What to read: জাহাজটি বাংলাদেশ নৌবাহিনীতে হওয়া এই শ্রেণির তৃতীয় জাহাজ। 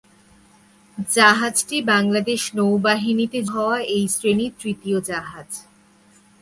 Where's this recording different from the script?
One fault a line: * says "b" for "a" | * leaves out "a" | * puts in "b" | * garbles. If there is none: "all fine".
all fine